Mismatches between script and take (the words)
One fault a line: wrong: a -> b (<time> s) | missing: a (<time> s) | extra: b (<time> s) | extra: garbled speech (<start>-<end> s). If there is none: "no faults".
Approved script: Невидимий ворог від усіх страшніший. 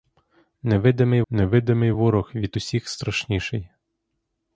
extra: невидимий (1.3 s)